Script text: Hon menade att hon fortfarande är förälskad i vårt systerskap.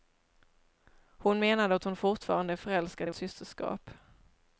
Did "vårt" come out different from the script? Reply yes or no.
yes